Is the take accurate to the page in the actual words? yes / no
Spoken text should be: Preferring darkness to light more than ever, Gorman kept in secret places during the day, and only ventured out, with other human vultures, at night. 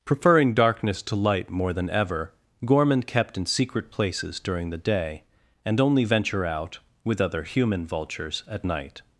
no